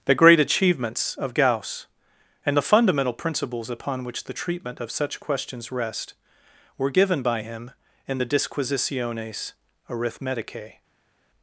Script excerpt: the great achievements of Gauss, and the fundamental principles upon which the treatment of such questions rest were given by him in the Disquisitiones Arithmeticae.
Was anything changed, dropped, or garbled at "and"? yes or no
no